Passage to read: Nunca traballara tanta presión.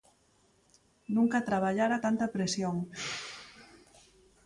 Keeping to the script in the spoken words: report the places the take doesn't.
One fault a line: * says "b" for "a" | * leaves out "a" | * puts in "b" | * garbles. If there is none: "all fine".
all fine